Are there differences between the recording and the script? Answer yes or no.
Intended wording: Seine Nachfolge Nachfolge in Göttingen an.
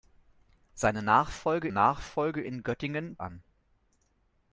no